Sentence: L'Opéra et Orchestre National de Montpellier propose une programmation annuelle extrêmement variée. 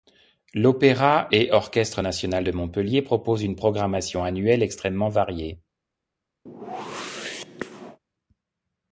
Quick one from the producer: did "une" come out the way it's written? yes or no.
yes